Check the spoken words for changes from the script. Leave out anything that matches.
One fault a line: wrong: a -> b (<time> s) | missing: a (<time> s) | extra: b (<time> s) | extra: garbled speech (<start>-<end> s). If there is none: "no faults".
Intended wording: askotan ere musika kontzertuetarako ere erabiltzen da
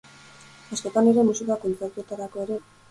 missing: erabiltzen (2.6 s)